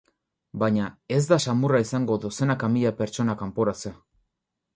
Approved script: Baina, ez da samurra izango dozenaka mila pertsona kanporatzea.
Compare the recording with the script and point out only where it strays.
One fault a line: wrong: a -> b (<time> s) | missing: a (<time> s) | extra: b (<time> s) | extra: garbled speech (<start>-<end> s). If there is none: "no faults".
no faults